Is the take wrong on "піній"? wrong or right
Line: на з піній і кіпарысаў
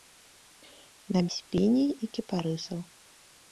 right